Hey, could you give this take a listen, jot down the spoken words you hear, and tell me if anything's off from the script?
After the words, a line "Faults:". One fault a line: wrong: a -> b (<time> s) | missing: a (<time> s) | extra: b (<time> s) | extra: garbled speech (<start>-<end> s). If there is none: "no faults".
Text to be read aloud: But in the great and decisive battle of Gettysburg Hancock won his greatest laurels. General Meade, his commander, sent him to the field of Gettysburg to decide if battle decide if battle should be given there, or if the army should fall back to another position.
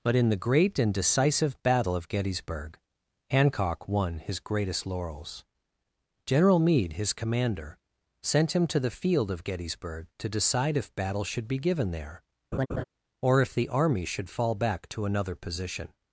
But in the great and decisive battle of Gettysburg Hancock won his greatest laurels. General Meade, his commander, sent him to the field of Gettysburg to decide if battle should be given there, or if the army should fall back to another position.
Faults:
missing: decide if battle (11.2 s)